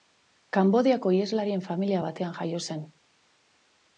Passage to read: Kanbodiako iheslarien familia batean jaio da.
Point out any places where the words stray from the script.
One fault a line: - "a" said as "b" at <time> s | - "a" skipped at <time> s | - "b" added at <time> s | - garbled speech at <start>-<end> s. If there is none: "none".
- "da" said as "zen" at 2.7 s